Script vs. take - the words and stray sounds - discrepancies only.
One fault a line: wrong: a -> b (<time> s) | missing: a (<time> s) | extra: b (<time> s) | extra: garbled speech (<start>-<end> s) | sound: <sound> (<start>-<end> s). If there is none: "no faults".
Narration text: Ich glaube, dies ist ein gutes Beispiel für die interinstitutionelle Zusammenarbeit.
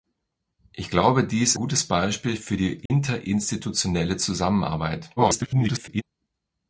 missing: ist ein (1.6 s)
sound: dropout (2.9-2.9 s)
extra: garbled speech (5.2-6.0 s)